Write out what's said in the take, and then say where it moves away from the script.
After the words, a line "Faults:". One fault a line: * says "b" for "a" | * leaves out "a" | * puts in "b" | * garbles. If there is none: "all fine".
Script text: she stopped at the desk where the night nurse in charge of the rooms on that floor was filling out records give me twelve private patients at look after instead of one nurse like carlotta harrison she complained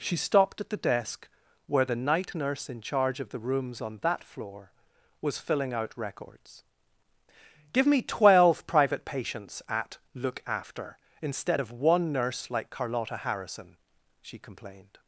she stopped at the desk where the night nurse in charge of the rooms on that floor was filling out records give me twelve private patients at look after instead of one nurse like carlotta harrison she complained
Faults:
all fine